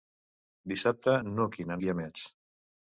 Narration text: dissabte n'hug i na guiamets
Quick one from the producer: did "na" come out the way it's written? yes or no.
yes